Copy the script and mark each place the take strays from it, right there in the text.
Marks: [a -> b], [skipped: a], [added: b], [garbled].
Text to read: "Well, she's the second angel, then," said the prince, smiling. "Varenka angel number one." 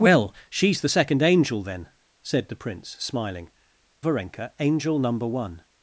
"Well, she's the second angel, then," said the prince, smiling. "Varenka angel number one."